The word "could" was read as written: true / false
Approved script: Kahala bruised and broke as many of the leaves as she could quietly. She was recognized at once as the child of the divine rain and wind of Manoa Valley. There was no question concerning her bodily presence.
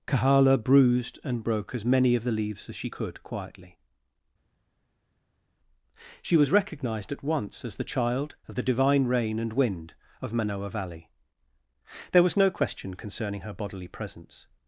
true